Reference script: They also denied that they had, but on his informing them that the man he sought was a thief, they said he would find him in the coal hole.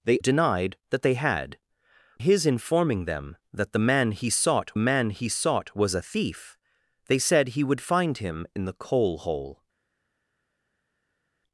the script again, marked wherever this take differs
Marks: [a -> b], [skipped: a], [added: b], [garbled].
They [skipped: also] denied that they had, [skipped: but on] his informing them that the man he sought [added: man he sought] was a thief, they said he would find him in the coal hole.